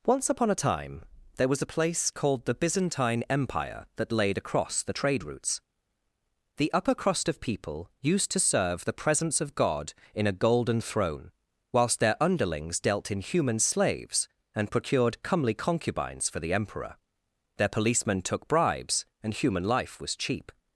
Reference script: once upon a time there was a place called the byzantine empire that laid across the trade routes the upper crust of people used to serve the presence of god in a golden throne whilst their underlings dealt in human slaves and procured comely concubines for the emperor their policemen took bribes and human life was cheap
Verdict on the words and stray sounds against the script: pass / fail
pass